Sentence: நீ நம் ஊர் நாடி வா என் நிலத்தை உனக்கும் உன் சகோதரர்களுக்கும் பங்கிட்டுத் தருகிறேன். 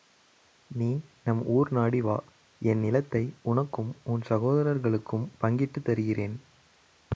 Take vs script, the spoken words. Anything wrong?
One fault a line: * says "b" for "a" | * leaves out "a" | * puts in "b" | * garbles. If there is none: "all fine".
all fine